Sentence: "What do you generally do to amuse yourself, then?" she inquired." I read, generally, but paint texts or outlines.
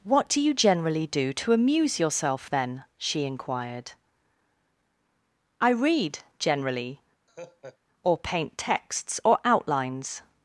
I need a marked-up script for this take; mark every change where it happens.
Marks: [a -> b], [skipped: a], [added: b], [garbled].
"What do you generally do to amuse yourself, then?" she inquired." I read, generally, [but -> or] paint texts or outlines.